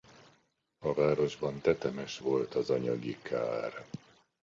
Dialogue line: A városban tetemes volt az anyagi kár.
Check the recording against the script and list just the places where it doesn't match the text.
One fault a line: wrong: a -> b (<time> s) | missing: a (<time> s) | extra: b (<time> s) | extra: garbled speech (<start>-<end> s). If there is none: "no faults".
no faults